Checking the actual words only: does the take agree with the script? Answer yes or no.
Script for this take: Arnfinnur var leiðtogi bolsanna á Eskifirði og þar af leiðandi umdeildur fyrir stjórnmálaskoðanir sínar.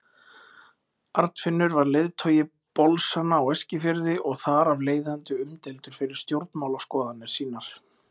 yes